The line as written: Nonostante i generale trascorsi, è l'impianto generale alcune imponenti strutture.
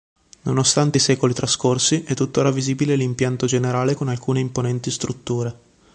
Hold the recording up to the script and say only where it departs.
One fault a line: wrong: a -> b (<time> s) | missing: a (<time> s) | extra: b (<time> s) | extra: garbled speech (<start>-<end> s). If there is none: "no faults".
wrong: generale -> secoli (1.0 s)
extra: tutt'ora visibile (2.1 s)
extra: con (3.9 s)